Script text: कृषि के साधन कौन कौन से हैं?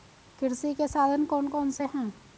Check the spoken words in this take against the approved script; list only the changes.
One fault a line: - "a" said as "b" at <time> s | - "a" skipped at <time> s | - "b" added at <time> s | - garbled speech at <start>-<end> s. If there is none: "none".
none